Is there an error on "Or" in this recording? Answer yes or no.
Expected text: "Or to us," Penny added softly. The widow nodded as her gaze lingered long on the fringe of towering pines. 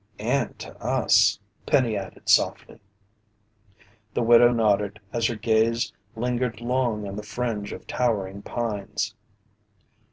yes